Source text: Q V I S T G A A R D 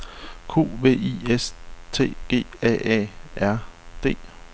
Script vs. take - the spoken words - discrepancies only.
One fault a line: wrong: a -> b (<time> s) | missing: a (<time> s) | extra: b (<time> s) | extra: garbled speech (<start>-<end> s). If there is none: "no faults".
no faults